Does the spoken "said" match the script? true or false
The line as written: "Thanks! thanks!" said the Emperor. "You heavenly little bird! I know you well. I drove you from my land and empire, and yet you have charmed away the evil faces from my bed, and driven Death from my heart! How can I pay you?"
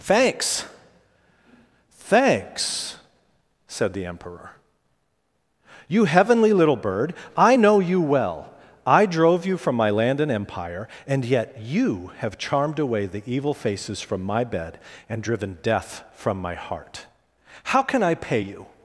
true